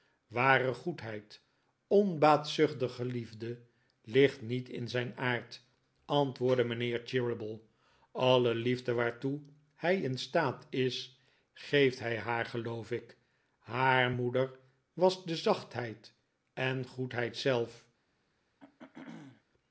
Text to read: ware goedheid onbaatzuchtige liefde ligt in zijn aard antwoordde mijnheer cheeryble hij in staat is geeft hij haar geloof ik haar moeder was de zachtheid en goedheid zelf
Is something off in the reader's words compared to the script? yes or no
yes